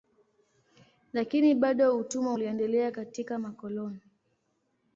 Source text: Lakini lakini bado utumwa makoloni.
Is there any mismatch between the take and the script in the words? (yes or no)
yes